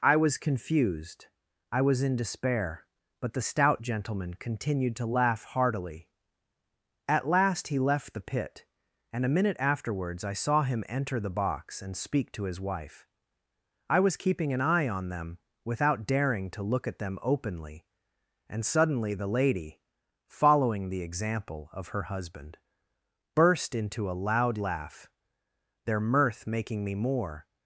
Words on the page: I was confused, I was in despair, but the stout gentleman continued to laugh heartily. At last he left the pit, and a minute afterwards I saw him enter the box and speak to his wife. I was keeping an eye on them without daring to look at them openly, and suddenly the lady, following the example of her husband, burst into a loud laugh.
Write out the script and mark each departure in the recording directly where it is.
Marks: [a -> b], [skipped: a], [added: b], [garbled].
I was confused, I was in despair, but the stout gentleman continued to laugh heartily. At last he left the pit, and a minute afterwards I saw him enter the box and speak to his wife. I was keeping an eye on them without daring to look at them openly, and suddenly the lady, following the example of her husband, burst into a loud laugh. [added: Their mirth making me more]